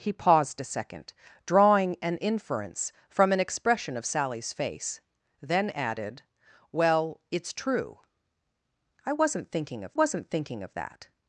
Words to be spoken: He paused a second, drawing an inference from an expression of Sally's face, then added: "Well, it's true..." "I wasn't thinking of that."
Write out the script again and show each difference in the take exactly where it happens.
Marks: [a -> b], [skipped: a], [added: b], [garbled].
He paused a second, drawing an inference from an expression of Sally's face, then added: "Well, it's true..." "I wasn't thinking of [added: wasn't thinking of] that."